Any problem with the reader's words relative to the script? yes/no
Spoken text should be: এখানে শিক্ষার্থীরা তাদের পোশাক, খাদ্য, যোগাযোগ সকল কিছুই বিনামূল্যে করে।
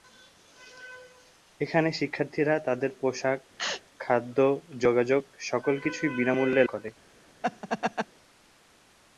no